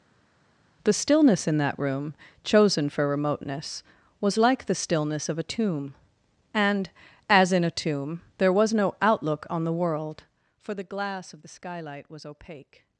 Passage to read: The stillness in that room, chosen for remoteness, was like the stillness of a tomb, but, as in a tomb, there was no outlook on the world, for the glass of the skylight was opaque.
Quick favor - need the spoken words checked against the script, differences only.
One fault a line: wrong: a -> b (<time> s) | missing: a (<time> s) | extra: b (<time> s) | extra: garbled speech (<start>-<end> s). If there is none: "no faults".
wrong: but -> and (6.5 s)